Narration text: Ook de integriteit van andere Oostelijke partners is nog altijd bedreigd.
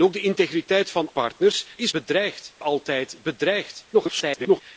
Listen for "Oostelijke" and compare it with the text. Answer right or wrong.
wrong